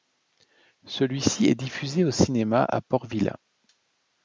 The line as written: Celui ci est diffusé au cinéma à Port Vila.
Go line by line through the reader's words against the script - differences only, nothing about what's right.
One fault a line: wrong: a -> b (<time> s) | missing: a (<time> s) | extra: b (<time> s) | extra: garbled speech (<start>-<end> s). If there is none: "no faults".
no faults